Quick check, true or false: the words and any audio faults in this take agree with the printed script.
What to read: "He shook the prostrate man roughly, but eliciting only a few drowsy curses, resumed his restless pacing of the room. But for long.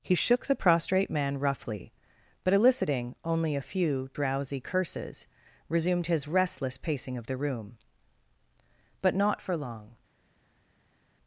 false